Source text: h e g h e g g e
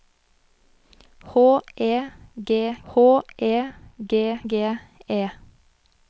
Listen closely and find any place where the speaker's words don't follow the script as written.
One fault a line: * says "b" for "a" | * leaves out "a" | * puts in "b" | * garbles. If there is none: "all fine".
all fine